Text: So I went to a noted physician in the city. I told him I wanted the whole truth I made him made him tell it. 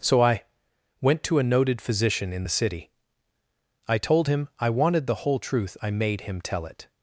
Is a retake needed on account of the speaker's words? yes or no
yes